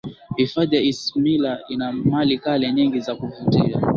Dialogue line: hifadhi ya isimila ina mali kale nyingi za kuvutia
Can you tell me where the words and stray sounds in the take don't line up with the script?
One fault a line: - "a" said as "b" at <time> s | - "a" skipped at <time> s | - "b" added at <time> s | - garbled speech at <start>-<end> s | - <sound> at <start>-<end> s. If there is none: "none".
none